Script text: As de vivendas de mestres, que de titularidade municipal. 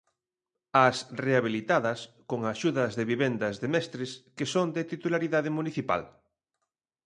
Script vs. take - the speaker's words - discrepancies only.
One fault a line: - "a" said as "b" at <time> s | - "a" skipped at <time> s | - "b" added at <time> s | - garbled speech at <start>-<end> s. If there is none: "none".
- "rehabilitadas con axudas" added at 1.2 s
- "son" added at 4.5 s